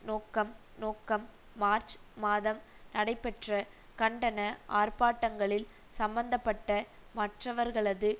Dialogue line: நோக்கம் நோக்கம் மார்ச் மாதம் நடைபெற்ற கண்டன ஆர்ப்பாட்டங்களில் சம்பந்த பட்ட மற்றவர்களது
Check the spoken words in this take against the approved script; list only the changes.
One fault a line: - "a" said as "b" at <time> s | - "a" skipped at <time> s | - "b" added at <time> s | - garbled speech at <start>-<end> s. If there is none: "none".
none